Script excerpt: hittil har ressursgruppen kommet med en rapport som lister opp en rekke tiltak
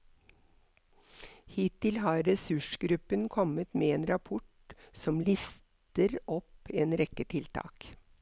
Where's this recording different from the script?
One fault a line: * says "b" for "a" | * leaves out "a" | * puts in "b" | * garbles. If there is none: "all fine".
all fine